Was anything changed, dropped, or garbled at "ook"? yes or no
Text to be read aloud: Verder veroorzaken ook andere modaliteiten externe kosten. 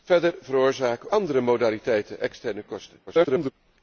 yes